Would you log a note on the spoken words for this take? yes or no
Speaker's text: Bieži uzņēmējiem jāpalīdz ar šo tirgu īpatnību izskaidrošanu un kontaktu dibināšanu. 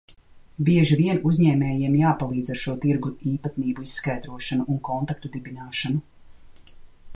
yes